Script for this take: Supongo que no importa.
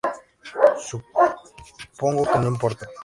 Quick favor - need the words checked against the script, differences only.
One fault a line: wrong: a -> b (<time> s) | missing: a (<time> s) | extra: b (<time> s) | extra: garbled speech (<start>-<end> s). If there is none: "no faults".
no faults